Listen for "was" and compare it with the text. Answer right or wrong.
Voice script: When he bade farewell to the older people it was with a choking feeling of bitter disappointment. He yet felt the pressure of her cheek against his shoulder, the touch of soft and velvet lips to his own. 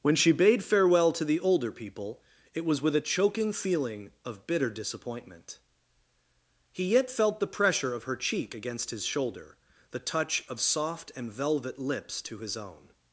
right